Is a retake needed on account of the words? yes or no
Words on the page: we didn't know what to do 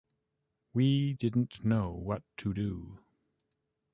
no